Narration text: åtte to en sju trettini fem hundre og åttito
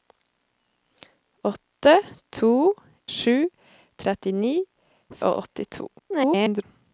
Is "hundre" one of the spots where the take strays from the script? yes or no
yes